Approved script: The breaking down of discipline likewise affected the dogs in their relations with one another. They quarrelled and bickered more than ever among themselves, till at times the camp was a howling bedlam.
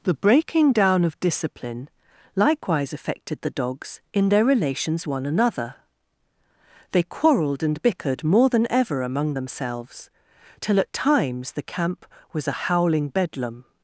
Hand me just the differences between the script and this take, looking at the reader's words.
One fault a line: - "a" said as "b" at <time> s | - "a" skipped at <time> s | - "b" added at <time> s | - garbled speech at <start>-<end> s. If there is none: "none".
- "with" skipped at 5.0 s